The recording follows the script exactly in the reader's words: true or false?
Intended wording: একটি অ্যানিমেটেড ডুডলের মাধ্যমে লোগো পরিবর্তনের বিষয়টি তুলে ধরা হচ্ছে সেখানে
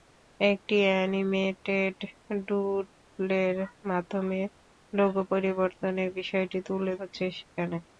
false